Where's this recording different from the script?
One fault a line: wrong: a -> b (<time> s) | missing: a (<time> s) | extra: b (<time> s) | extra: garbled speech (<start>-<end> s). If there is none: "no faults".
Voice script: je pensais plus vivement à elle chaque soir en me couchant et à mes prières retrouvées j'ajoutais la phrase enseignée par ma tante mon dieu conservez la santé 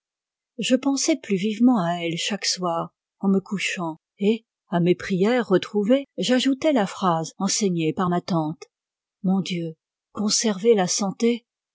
no faults